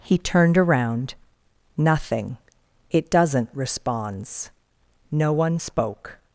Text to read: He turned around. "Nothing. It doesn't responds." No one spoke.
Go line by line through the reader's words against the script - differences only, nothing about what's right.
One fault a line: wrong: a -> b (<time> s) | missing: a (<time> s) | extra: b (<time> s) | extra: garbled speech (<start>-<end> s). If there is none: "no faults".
no faults